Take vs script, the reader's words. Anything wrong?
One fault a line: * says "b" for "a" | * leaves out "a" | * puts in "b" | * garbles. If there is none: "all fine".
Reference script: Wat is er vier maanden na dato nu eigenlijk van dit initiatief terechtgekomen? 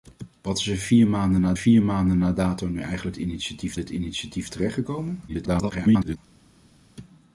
* puts in "vier maanden na"
* says "initiatief" for "van"
* garbles